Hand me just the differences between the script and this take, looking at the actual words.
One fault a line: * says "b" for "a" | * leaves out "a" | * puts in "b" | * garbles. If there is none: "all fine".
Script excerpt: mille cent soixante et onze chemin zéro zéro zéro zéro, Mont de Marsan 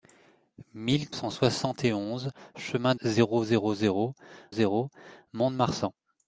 all fine